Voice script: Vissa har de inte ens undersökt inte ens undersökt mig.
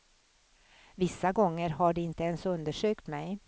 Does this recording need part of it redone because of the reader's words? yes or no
yes